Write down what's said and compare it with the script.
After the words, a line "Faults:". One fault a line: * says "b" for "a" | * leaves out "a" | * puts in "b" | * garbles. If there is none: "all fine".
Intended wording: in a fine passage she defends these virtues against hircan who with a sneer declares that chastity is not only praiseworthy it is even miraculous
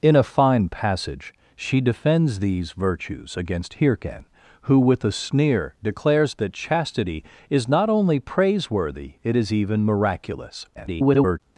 in a fine passage she defends these virtues against hircan who with a sneer declares that chastity is not only praiseworthy it is even miraculous [garbled]
Faults:
* garbles